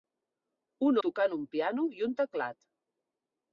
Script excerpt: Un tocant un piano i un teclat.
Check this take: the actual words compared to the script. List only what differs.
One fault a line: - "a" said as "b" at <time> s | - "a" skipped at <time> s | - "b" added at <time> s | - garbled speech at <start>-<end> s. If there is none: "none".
none